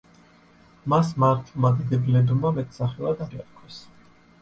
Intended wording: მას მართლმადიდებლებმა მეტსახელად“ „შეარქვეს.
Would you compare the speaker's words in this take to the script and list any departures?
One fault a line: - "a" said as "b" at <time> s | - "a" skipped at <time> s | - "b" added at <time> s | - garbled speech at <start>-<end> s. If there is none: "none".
none